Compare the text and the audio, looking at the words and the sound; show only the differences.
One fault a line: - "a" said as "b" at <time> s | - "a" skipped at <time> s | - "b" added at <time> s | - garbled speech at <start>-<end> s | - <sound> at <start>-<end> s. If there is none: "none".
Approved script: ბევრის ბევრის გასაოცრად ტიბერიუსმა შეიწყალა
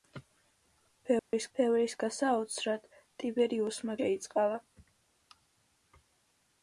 - dropout at 1.2-1.3 s